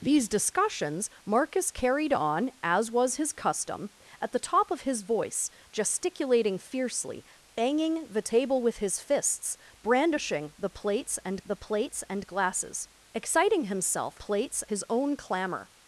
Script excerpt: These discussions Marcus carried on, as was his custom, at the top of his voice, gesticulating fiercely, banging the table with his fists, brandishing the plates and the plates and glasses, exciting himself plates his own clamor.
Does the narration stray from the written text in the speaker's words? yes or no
no